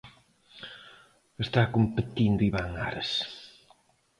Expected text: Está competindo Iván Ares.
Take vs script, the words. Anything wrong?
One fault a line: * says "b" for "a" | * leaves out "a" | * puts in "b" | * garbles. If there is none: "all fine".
all fine